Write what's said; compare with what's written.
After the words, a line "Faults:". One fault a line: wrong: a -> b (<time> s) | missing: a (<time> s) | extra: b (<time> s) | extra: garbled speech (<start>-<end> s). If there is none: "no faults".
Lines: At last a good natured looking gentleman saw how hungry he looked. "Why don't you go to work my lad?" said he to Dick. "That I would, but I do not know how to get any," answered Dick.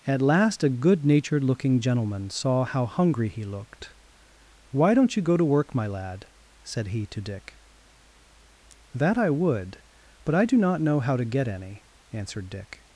At last a good natured looking gentleman saw how hungry he looked. "Why don't you go to work my lad?" said he to Dick. "That I would, but I do not know how to get any," answered Dick.
Faults:
no faults